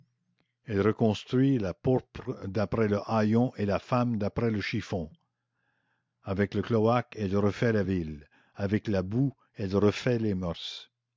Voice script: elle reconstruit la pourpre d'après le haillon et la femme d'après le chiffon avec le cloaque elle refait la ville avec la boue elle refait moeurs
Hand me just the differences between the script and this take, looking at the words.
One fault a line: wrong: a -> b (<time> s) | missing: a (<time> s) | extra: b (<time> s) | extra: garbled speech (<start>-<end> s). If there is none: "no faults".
extra: les (10.2 s)